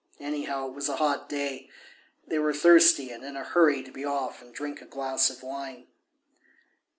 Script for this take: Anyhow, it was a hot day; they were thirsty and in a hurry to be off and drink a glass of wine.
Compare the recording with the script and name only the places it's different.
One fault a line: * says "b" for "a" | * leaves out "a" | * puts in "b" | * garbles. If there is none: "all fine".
all fine